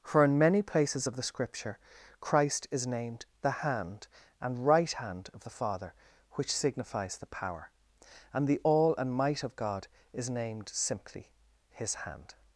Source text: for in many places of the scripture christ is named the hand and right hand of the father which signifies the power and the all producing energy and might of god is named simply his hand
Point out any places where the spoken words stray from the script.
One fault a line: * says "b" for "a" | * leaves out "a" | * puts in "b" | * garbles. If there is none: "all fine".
* leaves out "producing energy"